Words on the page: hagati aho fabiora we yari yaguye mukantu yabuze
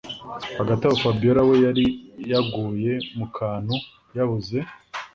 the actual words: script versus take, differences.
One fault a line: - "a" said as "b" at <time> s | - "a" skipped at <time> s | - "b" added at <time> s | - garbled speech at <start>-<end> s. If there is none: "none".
none